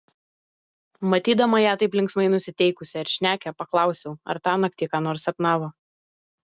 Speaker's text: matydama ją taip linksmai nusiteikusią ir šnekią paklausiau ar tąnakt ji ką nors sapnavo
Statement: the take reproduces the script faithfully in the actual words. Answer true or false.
true